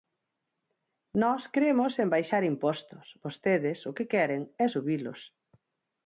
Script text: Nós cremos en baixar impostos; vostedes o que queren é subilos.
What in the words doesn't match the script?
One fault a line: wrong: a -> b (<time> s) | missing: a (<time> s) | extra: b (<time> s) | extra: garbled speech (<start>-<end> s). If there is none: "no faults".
no faults